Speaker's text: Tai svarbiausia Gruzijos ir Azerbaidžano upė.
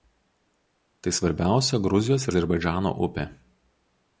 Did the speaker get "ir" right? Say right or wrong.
wrong